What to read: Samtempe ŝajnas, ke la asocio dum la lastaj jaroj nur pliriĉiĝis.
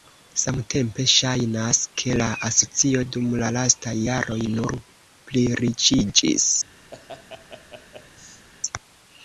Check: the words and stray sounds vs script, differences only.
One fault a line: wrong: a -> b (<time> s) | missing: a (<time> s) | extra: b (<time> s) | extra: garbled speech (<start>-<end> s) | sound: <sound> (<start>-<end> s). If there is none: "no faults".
sound: laugh (6.9-8.5 s)